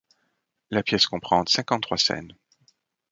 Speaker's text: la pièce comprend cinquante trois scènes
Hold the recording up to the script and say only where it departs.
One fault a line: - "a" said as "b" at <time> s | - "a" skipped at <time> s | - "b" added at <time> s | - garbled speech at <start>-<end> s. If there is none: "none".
none